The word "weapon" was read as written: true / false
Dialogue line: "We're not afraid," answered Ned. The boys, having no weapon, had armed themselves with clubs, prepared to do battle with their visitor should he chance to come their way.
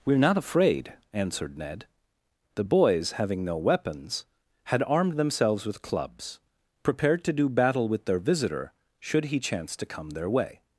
false